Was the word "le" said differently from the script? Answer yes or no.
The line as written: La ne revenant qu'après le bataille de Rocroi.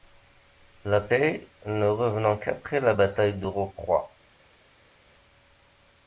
yes